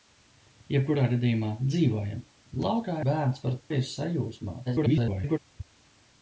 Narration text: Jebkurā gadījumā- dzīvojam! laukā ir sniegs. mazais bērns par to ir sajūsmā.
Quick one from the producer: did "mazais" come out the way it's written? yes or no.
no